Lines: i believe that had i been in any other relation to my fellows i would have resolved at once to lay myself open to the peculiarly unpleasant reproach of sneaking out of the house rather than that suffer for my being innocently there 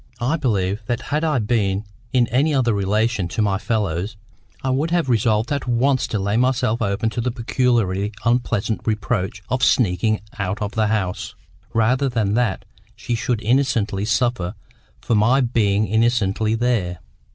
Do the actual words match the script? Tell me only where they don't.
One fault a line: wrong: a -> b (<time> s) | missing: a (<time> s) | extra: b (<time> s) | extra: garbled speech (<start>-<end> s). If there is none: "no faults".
extra: she should innocently (12.9 s)